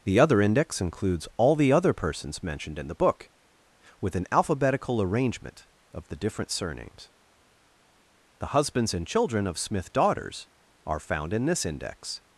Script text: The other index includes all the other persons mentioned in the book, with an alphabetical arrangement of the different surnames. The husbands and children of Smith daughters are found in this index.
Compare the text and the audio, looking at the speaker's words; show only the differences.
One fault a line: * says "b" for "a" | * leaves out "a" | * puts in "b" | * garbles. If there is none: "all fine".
all fine